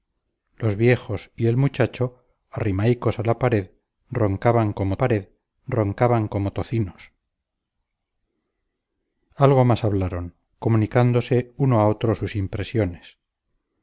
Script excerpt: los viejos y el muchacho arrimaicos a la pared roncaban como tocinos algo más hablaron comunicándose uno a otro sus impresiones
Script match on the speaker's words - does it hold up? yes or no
no